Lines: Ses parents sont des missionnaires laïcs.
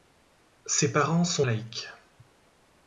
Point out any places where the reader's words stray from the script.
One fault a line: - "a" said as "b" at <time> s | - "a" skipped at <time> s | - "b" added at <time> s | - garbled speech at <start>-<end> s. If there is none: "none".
- "des missionnaires" skipped at 1.4 s